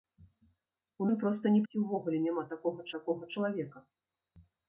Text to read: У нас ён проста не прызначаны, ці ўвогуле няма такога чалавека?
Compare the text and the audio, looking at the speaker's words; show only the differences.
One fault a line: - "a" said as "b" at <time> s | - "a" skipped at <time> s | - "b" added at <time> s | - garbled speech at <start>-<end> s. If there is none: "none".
- "нас" skipped at 1.1 s
- "прызначаны" skipped at 1.6 s
- "такога" added at 3.0 s